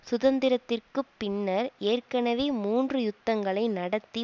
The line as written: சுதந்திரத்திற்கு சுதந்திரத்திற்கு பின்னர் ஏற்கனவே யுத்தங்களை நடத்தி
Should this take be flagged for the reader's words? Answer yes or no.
yes